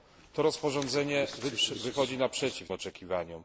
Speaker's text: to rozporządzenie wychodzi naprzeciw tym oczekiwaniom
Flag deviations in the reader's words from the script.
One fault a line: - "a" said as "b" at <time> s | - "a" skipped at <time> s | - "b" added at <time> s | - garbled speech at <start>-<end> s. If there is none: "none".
- "tym" skipped at 2.7 s